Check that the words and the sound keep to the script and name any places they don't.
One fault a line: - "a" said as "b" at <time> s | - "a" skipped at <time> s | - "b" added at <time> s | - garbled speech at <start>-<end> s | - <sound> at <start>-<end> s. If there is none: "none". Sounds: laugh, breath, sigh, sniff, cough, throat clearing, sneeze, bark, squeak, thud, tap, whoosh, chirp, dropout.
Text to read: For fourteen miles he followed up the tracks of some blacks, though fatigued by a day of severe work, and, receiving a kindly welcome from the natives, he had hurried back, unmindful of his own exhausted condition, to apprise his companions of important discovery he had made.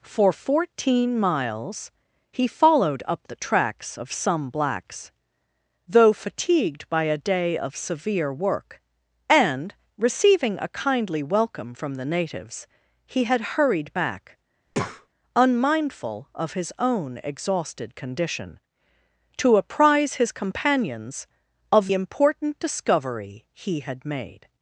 - breath at 14.7-15.1 s